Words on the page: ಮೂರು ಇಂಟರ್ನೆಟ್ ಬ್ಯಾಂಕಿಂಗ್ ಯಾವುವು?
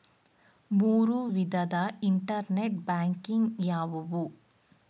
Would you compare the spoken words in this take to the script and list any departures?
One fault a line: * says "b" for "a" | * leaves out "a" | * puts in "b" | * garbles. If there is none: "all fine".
* puts in "ವಿಧದ"